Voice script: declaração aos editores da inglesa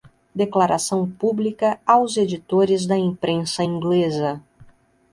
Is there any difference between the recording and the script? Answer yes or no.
yes